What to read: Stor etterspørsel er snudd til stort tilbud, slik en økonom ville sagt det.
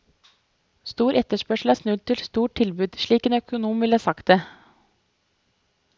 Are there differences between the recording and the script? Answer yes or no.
no